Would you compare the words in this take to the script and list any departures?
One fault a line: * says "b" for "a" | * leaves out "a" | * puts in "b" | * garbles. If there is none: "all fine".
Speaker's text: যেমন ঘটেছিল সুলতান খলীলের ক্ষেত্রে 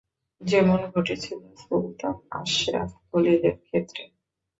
* puts in "আশরাফ"